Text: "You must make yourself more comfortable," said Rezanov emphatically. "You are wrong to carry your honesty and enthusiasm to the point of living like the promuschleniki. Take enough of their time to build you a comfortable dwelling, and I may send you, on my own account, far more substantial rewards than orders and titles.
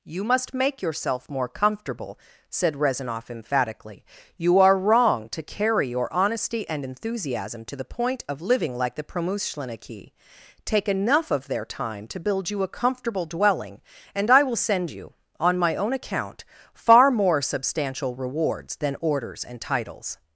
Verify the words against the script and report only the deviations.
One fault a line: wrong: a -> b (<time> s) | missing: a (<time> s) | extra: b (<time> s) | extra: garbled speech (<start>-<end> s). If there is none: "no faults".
wrong: may -> will (14.4 s)